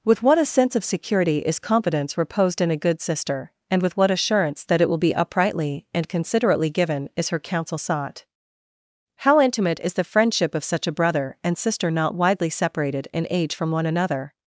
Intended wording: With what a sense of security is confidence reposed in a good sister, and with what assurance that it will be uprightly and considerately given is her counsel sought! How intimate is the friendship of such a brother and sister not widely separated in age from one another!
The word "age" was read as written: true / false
true